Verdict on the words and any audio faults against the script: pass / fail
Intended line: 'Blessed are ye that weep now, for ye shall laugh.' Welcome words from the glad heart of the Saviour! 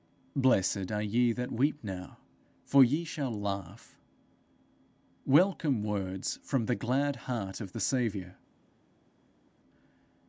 pass